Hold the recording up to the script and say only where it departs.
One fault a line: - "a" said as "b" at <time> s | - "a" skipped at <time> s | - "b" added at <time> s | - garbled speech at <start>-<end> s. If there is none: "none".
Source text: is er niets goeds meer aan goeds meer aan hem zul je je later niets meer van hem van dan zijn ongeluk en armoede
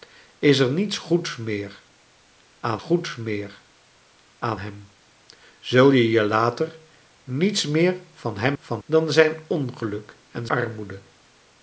none